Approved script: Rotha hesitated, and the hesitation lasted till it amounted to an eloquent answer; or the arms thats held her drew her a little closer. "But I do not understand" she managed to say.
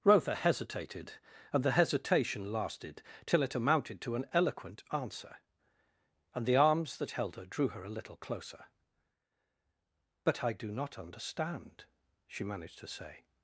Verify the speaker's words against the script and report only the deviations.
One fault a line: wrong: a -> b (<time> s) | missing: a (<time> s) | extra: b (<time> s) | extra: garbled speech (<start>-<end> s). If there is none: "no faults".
wrong: or -> and (6.3 s)
wrong: thats -> that (7.0 s)